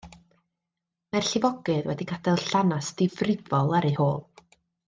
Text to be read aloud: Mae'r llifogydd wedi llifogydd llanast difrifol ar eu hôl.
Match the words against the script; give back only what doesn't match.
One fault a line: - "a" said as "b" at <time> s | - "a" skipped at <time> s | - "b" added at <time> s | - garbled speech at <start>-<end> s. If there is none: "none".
- "llifogydd" said as "gadael" at 2.1 s